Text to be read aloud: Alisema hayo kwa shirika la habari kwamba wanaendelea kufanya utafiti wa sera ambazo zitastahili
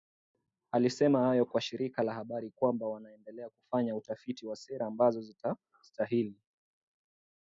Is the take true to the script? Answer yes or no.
yes